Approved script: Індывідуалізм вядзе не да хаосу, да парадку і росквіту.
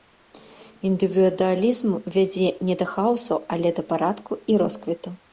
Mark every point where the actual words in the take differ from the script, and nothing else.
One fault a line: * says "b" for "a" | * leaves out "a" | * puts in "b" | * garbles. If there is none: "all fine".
* puts in "але"